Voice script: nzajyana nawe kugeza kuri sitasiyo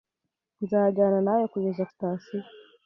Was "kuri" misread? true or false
true